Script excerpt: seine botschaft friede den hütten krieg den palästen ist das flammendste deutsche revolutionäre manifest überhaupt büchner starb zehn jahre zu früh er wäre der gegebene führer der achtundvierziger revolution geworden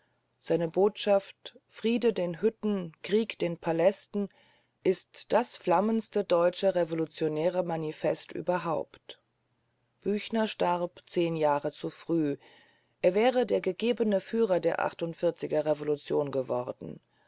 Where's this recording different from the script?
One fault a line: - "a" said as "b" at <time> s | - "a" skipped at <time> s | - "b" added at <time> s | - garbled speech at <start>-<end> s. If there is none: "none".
none